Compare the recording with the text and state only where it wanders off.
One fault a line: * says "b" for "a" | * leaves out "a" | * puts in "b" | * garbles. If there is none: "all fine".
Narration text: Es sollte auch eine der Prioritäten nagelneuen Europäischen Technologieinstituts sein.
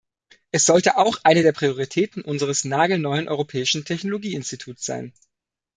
* puts in "unseres"